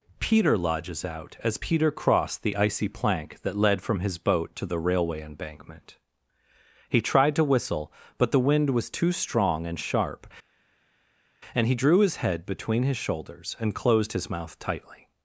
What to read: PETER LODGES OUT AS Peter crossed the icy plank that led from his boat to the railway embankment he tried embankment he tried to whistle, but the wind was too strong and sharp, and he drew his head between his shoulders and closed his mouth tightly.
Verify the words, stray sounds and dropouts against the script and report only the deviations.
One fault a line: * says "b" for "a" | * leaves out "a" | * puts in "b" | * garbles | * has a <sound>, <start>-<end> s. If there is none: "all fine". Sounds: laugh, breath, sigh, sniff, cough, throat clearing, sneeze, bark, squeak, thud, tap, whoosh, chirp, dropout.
* leaves out "embankment he tried"